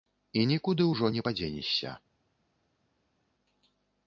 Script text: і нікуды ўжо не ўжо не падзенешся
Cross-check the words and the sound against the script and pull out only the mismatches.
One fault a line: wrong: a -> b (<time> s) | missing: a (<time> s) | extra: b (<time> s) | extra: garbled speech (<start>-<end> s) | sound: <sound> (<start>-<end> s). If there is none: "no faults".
missing: ўжо не (1.3 s)